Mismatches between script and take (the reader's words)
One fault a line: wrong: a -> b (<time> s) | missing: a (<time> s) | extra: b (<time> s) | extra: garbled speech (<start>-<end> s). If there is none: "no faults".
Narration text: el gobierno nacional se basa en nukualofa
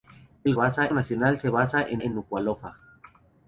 wrong: gobierno -> basa (0.5 s)
extra: en (2.0 s)